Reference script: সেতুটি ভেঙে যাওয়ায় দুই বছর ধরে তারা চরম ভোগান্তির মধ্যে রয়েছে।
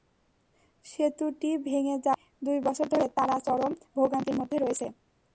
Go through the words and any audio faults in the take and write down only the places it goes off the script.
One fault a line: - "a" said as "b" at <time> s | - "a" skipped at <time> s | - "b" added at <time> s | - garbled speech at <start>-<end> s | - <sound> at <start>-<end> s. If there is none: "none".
none